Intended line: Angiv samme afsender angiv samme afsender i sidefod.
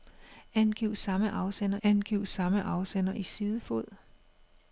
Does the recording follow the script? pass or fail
pass